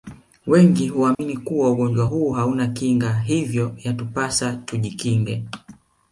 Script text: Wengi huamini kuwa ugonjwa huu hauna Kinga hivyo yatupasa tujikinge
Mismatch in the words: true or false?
false